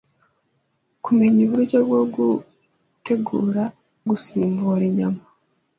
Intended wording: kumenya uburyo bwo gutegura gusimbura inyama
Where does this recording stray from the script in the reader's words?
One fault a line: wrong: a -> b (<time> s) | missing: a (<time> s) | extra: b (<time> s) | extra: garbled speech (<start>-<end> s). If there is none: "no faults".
no faults